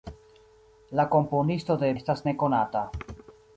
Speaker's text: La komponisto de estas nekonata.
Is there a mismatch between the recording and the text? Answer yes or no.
no